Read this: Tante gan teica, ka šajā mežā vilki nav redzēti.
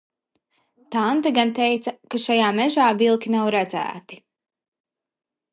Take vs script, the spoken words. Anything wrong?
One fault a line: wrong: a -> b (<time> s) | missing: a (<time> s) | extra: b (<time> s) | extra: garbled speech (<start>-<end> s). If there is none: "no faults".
no faults